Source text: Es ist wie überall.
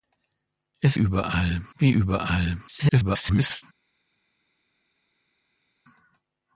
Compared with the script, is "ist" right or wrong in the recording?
wrong